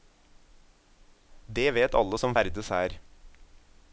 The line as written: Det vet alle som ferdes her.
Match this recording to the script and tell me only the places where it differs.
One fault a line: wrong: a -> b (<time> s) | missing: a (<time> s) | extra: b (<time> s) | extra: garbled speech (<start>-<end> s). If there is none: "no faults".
no faults